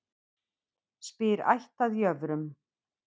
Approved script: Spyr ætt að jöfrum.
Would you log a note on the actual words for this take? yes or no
no